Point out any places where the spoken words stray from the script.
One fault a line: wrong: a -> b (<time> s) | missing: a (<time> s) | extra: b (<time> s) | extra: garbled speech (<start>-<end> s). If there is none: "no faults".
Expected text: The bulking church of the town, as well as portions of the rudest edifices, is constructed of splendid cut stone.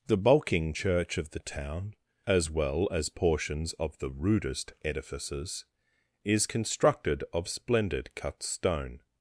no faults